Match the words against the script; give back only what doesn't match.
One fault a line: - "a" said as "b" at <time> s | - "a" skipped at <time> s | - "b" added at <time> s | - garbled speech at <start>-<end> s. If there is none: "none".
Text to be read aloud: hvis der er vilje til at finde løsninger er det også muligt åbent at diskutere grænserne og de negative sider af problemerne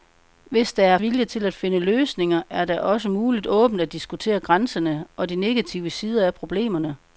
none